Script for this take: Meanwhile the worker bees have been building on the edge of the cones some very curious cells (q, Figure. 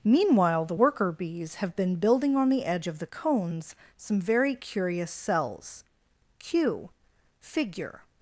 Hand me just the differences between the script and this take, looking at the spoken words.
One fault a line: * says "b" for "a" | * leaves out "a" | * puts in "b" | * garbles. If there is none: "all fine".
all fine